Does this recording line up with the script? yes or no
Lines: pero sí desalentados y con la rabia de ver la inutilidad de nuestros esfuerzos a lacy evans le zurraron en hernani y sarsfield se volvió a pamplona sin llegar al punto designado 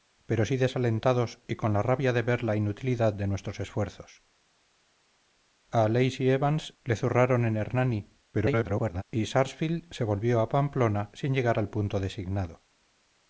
no